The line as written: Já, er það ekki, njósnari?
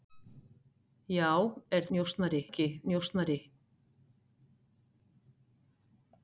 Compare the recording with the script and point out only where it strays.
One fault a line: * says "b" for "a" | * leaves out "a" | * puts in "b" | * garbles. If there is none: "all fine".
* says "njósnari" for "það"